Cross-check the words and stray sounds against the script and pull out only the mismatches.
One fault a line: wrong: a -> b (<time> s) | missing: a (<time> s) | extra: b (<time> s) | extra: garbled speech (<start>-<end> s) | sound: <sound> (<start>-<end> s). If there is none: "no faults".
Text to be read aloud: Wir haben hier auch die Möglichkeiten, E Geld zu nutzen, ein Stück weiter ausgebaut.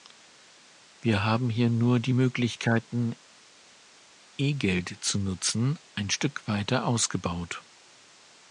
wrong: auch -> nur (1.7 s)